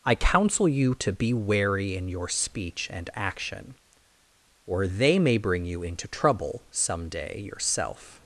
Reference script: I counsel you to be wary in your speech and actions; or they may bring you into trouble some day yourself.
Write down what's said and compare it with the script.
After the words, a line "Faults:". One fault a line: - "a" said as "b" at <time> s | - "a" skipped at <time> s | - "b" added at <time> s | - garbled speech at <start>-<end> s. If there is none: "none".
I counsel you to be wary in your speech and action; or they may bring you into trouble some day yourself.
Faults:
- "actions" said as "action" at 3.1 s